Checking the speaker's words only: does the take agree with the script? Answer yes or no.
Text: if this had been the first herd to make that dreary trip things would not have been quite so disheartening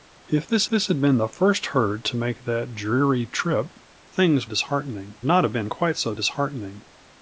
no